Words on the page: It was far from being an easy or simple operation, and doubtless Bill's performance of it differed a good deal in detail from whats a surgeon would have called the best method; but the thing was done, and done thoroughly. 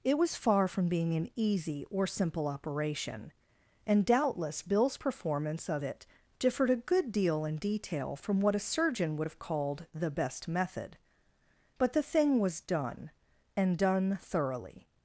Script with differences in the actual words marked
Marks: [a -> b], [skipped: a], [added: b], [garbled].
It was far from being an easy or simple operation, and doubtless Bill's performance of it differed a good deal in detail from [whats -> what] a surgeon would have called the best method; but the thing was done, and done thoroughly.